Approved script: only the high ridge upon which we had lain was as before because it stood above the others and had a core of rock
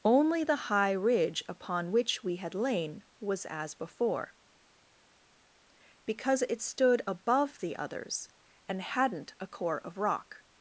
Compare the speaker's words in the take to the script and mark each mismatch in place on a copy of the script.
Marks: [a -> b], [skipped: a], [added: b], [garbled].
only the high ridge upon which we had lain was as before because it stood above the others and [had -> hadn't] a core of rock